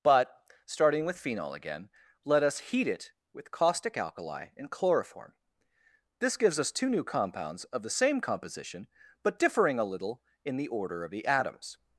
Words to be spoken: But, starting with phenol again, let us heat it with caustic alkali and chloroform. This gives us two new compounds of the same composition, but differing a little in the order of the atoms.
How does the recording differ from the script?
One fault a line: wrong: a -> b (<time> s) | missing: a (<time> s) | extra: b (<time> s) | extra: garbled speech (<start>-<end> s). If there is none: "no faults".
no faults